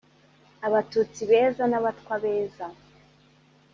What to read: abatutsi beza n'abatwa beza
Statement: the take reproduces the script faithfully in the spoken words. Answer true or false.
true